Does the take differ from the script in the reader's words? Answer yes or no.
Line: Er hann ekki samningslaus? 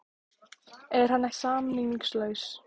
yes